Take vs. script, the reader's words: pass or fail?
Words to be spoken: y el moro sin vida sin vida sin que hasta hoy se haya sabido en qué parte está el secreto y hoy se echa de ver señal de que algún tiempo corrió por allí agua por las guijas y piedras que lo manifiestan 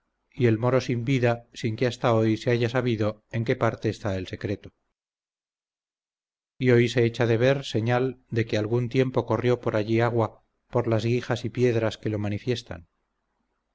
fail